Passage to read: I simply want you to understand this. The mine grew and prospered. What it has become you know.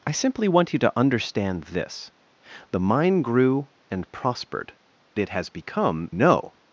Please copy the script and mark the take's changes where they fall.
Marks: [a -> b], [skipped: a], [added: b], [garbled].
I simply want you to understand this. The mine grew and prospered. [skipped: What] it has become [skipped: you] know.